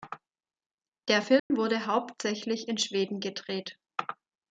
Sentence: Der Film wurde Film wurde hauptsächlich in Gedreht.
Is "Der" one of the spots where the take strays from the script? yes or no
no